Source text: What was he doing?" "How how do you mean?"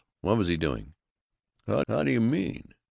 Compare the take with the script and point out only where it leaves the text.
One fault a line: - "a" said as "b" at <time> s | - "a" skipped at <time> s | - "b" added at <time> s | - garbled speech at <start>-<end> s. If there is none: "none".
none